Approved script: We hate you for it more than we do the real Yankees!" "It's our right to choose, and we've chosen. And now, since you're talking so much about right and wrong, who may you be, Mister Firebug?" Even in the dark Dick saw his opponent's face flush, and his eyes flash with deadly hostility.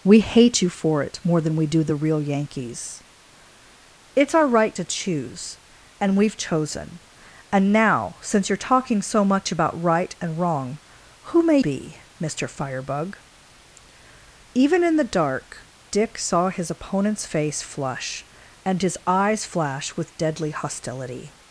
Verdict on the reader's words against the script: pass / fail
fail